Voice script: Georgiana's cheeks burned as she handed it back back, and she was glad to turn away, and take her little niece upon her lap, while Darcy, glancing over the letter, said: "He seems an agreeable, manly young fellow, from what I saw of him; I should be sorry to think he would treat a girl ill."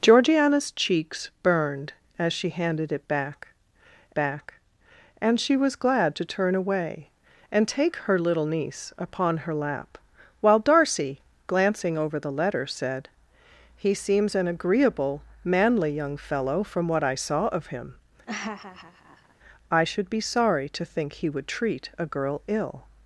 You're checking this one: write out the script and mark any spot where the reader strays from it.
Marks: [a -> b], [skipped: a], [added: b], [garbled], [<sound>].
Georgiana's cheeks burned as she handed it back back, and she was glad to turn away, and take her little niece upon her lap, while Darcy, glancing over the letter, said: "He seems an agreeable, manly young fellow, from what I saw of him; [laugh] I should be sorry to think he would treat a girl ill."